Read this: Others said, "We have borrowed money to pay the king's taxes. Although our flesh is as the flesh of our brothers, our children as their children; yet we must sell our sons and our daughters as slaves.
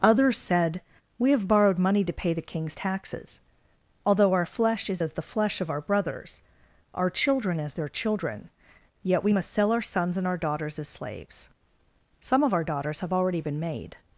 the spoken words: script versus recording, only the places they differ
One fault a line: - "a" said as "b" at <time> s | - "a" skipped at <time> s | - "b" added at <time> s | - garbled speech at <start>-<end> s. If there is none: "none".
- "Some of our daughters have already been made" added at 12.2 s